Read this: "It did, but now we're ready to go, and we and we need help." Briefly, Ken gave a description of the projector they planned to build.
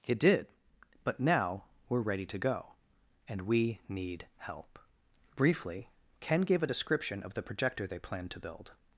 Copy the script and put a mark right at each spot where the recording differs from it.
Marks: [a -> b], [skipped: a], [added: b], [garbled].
"It did, but now we're ready to go, and we [skipped: and we] need help." Briefly, Ken gave a description of the projector they planned to build.